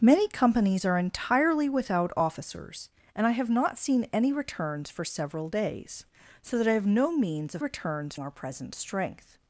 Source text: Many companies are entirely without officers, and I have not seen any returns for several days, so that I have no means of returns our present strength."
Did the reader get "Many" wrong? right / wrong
right